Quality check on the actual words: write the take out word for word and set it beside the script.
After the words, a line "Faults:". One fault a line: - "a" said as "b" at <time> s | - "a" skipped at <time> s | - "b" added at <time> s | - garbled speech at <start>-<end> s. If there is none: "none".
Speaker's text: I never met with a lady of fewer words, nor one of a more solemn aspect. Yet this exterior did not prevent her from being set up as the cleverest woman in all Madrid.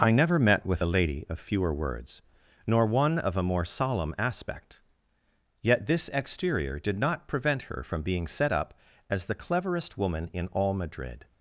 I never met with a lady of fewer words, nor one of a more solemn aspect. Yet this exterior did not prevent her from being set up as the cleverest woman in all Madrid.
Faults:
none